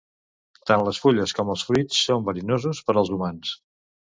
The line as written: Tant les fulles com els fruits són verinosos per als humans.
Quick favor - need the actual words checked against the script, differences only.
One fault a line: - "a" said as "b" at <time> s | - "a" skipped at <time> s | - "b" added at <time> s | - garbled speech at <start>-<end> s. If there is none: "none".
none